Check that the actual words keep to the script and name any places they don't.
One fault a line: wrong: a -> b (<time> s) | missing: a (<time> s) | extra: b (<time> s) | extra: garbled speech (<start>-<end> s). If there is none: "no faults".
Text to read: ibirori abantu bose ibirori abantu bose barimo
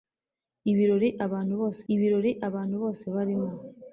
no faults